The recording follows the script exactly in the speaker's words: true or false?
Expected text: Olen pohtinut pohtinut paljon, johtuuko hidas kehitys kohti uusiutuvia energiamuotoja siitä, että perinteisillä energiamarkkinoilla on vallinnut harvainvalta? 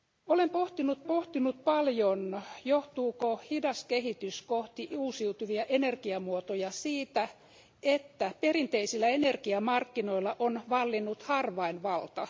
true